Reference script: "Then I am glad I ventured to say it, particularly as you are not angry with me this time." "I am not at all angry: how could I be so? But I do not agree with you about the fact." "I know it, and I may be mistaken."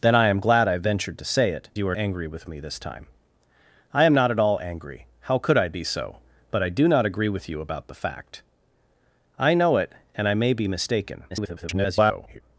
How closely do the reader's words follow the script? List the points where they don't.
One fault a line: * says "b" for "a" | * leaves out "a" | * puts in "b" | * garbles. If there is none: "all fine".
* leaves out "particularly as"
* leaves out "not"
* garbles